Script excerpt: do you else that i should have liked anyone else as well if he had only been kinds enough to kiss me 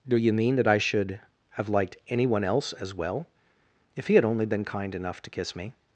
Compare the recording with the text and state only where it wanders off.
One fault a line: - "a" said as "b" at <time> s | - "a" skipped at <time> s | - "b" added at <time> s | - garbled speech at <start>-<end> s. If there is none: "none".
- "else" said as "mean" at 0.3 s
- "kinds" said as "kind" at 4.7 s